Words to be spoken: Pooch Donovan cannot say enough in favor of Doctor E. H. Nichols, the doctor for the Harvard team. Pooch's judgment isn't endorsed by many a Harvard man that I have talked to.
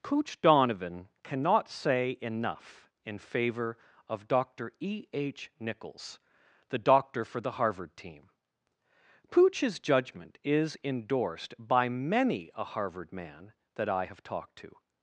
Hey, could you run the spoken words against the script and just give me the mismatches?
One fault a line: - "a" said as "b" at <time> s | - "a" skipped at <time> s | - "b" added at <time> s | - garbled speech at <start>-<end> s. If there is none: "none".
- "isn't" said as "is" at 10.4 s